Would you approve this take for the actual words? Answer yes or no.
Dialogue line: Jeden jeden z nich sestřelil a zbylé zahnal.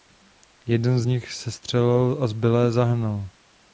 no